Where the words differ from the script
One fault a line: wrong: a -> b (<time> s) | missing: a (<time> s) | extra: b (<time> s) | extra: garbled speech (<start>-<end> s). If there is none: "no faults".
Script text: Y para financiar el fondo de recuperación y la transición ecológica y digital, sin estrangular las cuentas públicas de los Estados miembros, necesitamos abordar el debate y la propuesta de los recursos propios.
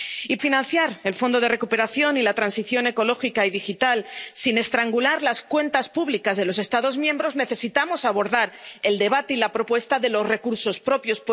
missing: para (0.4 s)